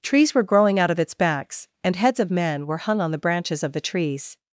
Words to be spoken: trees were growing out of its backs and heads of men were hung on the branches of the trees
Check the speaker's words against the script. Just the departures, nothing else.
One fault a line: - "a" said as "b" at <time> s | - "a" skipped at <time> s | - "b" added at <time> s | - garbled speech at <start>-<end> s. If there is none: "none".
none